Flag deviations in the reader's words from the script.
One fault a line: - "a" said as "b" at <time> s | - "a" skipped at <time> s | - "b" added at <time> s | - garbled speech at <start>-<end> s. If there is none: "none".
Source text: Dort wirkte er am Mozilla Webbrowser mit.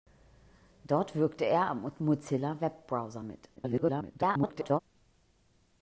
- garbled speech at 3.6-4.8 s